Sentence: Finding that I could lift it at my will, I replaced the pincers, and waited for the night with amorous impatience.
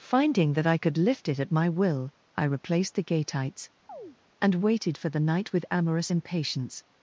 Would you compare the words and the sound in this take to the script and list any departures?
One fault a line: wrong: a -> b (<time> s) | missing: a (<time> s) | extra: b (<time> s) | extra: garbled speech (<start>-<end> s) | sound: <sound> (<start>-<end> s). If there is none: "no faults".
wrong: pincers -> gateites (3.0 s)
sound: chirp (3.9-4.2 s)